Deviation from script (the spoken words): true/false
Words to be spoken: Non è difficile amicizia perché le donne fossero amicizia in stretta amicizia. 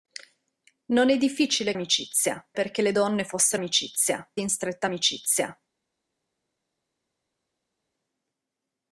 false